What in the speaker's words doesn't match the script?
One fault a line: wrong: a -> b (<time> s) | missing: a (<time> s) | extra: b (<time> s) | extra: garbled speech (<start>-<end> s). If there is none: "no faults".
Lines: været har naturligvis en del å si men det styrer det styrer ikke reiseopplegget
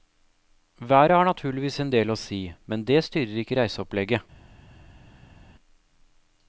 missing: det styrer (3.4 s)